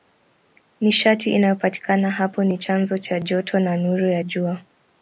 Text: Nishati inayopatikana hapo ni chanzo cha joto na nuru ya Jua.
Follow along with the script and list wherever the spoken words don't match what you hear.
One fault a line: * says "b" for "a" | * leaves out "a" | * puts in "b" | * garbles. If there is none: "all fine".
all fine